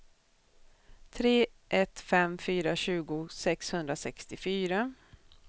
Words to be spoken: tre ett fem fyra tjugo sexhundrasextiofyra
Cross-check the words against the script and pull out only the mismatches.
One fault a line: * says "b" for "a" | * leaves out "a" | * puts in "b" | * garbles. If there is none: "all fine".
all fine